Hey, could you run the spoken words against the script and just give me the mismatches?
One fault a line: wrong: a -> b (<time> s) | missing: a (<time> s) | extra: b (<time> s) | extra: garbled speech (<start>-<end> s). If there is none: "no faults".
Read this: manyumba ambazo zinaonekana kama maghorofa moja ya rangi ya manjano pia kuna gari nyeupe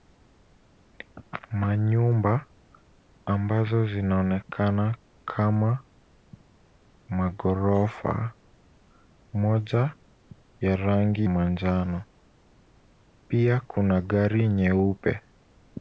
missing: ya (11.3 s)